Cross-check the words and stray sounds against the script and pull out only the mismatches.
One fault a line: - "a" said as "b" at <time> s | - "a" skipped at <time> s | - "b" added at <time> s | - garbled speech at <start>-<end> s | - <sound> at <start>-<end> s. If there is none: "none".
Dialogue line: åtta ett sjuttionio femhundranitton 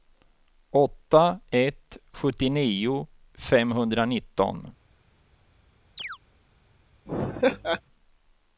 - chirp at 6.0-6.2 s
- laugh at 7.1-7.8 s